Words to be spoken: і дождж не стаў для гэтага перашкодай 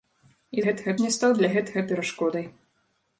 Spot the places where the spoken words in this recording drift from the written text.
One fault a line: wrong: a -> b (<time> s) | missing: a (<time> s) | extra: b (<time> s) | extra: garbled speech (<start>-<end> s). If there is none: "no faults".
wrong: дождж -> гэтага (0.7 s)